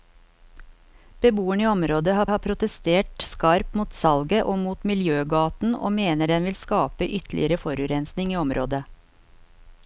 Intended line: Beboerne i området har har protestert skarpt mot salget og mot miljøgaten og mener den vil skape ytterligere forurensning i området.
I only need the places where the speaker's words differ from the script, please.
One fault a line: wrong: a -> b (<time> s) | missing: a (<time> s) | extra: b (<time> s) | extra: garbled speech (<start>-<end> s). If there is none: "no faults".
no faults